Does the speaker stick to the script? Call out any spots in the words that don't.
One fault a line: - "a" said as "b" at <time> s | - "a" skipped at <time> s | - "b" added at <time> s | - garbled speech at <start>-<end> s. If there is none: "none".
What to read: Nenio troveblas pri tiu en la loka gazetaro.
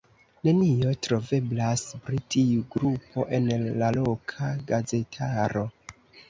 - "grupo" added at 2.8 s